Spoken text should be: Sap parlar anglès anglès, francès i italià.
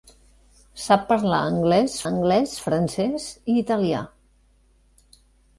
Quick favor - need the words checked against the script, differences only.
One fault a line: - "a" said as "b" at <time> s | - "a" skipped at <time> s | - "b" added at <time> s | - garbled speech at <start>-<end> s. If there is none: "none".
none